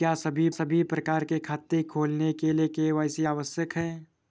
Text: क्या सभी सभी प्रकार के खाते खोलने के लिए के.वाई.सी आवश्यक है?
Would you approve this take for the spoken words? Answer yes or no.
yes